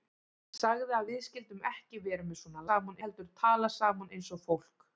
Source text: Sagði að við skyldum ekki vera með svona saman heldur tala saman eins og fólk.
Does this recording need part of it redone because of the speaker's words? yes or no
no